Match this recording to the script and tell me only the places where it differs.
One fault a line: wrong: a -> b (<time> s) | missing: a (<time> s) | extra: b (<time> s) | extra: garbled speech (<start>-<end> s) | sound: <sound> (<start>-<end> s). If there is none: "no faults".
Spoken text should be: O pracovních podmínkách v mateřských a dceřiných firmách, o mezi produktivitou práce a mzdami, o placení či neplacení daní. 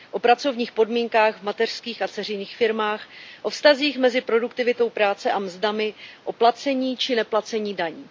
extra: vztazích (3.5 s)